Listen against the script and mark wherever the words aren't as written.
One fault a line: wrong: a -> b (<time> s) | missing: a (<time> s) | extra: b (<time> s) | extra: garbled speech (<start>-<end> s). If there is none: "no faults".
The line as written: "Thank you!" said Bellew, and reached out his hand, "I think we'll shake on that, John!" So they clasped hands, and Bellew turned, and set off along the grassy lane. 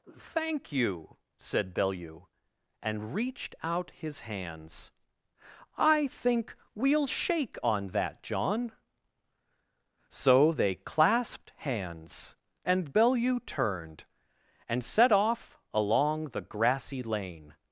wrong: hand -> hands (4.2 s)